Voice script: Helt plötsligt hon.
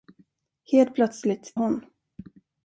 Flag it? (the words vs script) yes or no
no